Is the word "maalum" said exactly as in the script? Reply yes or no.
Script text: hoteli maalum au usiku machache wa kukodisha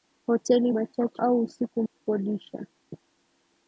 no